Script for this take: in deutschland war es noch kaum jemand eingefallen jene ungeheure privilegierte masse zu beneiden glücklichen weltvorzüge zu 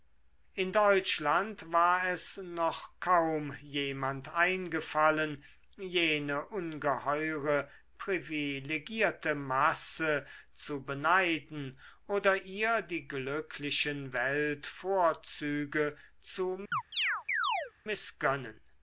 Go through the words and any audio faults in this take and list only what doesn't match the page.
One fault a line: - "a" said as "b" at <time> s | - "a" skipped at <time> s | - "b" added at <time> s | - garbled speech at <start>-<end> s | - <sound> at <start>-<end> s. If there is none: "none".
- "oder ihr die" added at 12.1 s
- chirp at 16.7-17.7 s